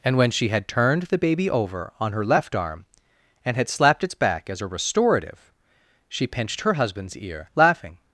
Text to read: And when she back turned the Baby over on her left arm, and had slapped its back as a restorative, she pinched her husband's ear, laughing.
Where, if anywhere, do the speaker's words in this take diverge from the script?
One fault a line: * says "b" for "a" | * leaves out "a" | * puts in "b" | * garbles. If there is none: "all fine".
* says "had" for "back"